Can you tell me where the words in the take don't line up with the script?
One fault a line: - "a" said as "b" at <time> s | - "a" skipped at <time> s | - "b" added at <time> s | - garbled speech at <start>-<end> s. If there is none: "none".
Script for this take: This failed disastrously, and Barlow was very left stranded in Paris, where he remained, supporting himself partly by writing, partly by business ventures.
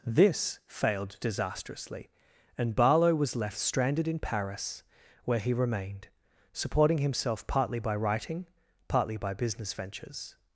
- "very" skipped at 3.4 s